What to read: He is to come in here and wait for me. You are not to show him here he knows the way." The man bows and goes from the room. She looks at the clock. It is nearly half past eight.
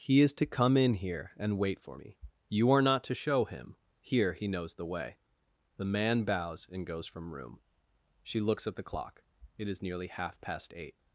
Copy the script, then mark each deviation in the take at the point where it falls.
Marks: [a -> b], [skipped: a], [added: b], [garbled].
He is to come in here and wait for me. You are not to show him here he knows the way." The man bows and goes from [skipped: the] room. She looks at the clock. It is nearly half past eight.